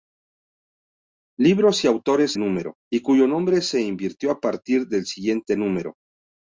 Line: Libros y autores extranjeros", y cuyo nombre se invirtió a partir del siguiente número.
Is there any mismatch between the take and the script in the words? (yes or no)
yes